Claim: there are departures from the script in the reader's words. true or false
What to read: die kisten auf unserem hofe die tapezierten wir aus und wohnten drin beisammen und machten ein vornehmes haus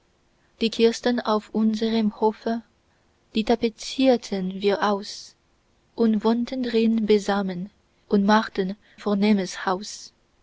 true